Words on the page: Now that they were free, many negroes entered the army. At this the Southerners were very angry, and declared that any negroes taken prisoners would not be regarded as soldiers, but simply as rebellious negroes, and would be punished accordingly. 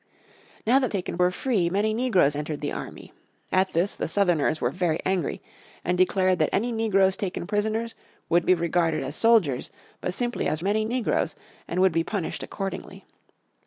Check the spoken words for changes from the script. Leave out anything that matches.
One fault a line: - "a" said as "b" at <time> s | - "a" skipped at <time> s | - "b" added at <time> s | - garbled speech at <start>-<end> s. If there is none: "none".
- "they" said as "taken" at 0.9 s
- "not" skipped at 8.4 s
- "rebellious" said as "many" at 10.6 s